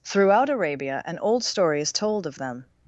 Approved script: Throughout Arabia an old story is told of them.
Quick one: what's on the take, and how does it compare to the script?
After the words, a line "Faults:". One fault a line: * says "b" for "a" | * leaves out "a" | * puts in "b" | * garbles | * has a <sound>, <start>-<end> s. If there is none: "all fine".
Throughout Arabia an old story is told of them.
Faults:
all fine